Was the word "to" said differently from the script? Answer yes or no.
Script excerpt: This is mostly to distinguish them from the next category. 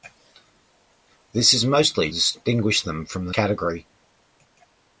yes